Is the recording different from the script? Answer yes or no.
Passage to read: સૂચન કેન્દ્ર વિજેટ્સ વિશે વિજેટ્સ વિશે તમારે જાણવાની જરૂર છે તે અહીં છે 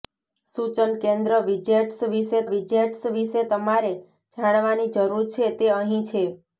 no